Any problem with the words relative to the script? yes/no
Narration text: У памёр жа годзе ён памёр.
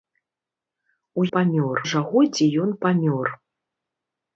no